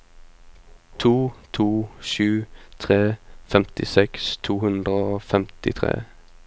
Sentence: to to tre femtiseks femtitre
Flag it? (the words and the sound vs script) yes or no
yes